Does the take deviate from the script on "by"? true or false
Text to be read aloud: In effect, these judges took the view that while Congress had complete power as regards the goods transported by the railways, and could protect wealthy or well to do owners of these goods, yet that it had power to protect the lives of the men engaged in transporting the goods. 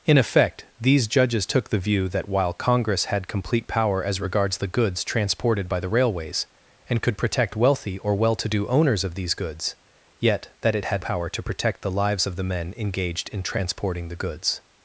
false